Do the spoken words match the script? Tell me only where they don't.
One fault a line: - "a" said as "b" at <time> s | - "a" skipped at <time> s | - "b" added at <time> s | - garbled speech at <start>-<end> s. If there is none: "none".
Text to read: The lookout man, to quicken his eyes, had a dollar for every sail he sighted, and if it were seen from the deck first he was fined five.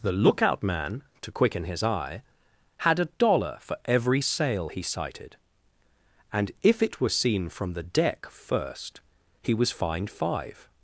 - "eyes" said as "eye" at 1.8 s